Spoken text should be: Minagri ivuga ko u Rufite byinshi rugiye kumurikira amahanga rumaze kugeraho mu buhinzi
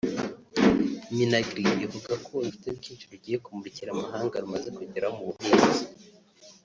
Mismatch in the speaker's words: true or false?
false